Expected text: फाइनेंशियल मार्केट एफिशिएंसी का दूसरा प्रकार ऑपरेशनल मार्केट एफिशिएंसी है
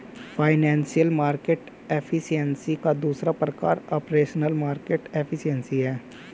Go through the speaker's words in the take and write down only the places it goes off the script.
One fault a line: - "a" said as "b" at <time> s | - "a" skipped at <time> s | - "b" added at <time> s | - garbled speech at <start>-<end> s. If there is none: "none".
none